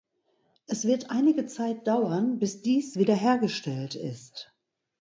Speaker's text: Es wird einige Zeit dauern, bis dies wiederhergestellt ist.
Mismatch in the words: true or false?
false